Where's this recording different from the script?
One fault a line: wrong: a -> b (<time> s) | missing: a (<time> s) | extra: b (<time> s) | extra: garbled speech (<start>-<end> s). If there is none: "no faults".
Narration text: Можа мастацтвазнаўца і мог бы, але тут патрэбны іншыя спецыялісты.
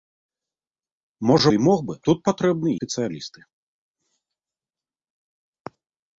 missing: мастацтвазнаўца (1.5 s)
missing: але (1.9 s)
missing: іншыя (2.7 s)